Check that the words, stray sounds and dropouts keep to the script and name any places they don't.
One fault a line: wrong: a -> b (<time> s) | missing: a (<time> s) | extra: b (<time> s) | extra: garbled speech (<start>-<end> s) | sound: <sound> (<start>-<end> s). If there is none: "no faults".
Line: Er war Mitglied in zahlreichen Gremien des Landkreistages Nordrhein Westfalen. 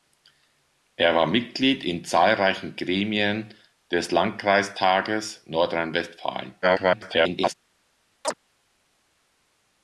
extra: garbled speech (6.6-7.5 s)
sound: chirp (8.2-8.3 s)